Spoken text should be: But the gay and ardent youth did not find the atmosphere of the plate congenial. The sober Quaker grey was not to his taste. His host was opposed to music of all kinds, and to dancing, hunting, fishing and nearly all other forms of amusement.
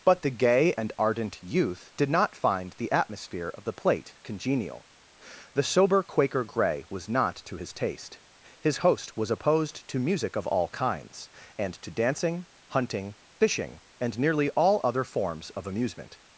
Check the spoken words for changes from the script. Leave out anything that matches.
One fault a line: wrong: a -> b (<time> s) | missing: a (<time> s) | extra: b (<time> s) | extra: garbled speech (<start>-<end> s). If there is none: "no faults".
no faults